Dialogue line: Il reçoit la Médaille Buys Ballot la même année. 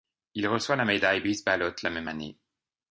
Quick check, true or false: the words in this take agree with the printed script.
true